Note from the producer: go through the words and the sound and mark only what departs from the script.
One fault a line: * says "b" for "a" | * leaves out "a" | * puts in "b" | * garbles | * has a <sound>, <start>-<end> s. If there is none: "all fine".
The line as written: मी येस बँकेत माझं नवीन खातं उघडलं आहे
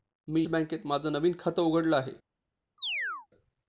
* leaves out "येस"
* has a chirp, 2.8-3.3 s